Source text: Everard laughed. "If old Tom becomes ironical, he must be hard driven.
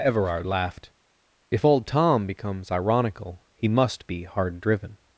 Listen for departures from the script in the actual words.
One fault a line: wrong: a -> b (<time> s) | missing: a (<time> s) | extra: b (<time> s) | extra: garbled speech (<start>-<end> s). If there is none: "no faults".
no faults